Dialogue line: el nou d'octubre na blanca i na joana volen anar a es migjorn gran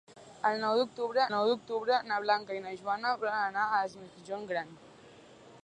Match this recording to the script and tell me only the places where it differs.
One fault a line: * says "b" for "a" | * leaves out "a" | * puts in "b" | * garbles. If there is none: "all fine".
* puts in "nou d'octubre"